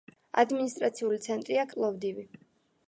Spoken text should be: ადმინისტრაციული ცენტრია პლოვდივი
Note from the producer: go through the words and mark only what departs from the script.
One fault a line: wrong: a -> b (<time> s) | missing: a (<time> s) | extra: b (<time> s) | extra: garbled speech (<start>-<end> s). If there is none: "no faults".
no faults